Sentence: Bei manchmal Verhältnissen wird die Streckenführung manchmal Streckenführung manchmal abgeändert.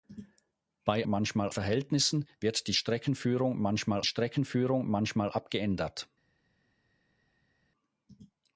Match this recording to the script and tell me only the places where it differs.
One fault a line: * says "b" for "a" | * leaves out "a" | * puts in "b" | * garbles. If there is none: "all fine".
all fine